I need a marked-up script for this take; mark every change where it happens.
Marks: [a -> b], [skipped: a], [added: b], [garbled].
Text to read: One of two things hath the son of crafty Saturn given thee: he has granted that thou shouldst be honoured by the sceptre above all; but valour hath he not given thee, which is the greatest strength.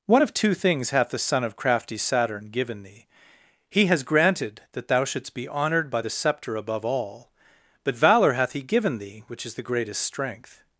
One of two things hath the son of crafty Saturn given thee: he has granted that thou shouldst be honoured by the sceptre above all; but valour hath he [skipped: not] given thee, which is the greatest strength.